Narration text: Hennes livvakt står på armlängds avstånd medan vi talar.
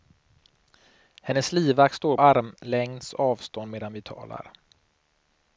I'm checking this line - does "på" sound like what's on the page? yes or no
no